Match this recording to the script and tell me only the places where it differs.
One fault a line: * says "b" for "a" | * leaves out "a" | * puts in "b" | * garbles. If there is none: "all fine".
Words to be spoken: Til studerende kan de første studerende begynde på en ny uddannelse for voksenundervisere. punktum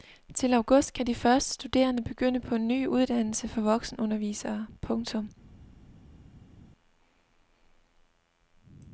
* says "august" for "studerende"